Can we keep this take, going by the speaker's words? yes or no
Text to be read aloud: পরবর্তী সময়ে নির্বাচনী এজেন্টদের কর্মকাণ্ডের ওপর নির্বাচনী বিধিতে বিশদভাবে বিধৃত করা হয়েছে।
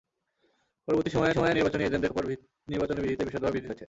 no